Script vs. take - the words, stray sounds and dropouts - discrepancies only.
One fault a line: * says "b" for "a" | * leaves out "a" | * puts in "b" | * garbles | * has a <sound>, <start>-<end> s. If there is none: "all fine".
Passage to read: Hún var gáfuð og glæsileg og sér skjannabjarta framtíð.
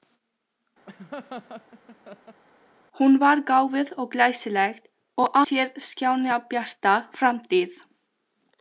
* has a laugh, 0.9-2.4 s